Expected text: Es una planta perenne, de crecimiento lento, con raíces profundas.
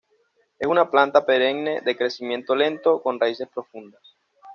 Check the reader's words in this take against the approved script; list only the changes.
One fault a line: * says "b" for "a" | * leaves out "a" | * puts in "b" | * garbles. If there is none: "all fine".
all fine